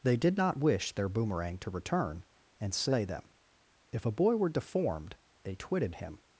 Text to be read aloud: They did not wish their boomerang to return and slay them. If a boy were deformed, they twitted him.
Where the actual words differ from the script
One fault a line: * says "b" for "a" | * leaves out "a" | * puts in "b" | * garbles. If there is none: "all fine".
all fine